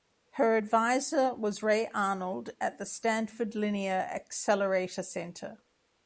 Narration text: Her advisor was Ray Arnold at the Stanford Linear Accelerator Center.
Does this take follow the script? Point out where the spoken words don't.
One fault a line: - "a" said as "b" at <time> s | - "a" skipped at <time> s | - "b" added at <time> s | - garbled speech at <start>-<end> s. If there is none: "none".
none